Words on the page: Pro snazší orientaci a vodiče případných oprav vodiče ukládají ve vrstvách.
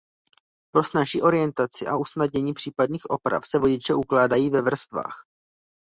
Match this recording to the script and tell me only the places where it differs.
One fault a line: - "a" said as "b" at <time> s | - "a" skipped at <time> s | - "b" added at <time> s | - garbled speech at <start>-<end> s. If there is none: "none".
- "vodiče" said as "usnadnění" at 1.9 s
- "se" added at 3.5 s